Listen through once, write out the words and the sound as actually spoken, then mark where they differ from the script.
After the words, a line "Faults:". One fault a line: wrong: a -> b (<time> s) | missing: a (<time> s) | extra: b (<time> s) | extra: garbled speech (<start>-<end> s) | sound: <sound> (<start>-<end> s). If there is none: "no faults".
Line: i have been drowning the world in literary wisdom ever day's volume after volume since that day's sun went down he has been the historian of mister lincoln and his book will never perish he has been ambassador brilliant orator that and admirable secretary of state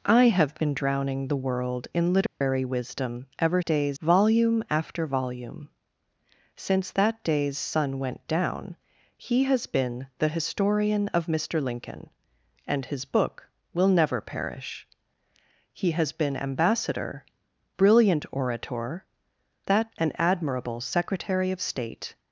i have been drowning the world in literary wisdom ever day's volume after volume since that day's sun went down he has been the historian of mister lincoln and his book will never perish he has been ambassador brilliant orator that and admirable secretary of state
Faults:
sound: dropout (2.3-2.4 s)